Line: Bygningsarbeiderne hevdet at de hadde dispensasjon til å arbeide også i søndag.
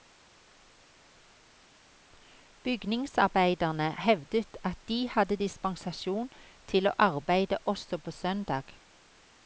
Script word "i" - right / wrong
wrong